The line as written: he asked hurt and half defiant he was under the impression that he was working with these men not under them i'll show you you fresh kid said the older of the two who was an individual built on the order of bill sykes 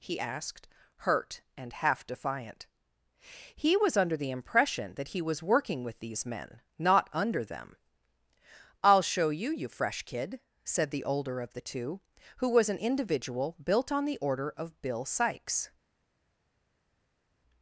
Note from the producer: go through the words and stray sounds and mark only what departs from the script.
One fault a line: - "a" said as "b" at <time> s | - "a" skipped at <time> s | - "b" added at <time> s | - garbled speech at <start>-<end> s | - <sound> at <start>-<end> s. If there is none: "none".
none